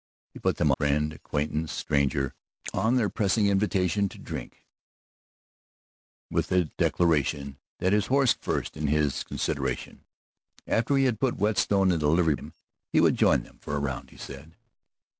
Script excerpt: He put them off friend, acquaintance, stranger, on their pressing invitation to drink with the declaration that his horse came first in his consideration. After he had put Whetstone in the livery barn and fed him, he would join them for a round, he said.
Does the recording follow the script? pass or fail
fail